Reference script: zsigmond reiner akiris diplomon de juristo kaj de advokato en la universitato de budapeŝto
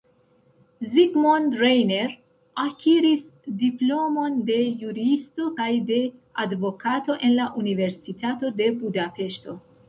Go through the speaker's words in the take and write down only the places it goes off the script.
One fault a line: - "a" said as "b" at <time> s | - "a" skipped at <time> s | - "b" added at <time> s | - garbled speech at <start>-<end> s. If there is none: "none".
none